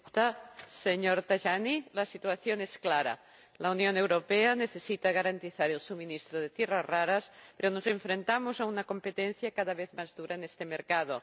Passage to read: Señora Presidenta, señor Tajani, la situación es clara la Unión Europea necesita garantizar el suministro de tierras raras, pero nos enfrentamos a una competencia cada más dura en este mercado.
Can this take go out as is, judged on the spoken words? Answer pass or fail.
fail